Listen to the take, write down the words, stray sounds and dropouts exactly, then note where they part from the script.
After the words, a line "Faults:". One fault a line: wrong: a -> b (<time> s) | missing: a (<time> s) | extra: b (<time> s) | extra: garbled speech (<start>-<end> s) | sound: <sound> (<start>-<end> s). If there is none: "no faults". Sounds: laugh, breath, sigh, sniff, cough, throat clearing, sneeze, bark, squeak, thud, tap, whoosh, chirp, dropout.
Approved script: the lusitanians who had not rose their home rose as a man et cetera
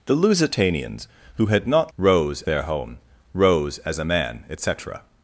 the lusitanians who had not rose their home rose as a man et cetera
Faults:
no faults